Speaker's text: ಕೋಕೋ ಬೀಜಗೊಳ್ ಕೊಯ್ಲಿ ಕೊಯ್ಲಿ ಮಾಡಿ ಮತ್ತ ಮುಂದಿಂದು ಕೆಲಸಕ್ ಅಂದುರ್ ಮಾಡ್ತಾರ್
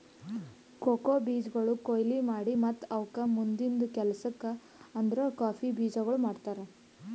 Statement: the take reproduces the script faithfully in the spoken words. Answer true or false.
false